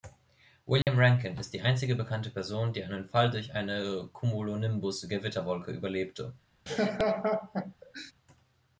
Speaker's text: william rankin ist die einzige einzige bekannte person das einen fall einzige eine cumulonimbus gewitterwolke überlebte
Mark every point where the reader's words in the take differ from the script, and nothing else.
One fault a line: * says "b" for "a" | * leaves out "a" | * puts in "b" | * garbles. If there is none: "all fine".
* leaves out "einzige"
* says "die" for "das"
* says "durch" for "einzige"